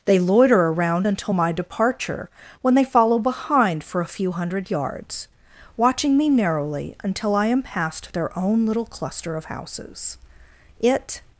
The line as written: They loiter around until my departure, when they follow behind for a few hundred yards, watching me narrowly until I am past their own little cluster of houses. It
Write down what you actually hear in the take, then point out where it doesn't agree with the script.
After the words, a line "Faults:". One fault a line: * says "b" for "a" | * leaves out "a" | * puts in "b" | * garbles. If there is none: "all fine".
They loiter around until my departure, when they follow behind for a few hundred yards, watching me narrowly until I am past their own little cluster of houses. It
Faults:
all fine